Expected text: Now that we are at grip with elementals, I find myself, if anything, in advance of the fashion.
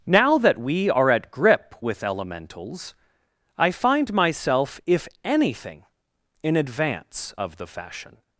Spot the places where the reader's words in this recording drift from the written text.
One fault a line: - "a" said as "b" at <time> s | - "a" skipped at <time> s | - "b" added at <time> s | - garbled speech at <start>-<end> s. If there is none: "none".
none